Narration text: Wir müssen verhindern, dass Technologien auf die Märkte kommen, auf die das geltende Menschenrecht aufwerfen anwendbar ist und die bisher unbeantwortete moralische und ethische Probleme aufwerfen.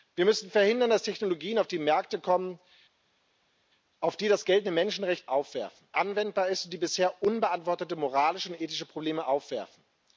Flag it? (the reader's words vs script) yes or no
no